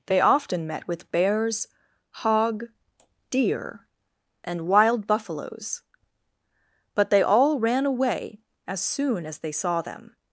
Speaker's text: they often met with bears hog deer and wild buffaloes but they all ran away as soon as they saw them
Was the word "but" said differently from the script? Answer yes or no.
no